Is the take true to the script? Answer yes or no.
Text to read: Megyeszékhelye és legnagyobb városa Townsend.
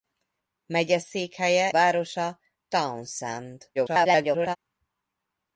no